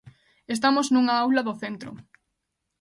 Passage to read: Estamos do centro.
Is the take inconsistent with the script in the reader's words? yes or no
yes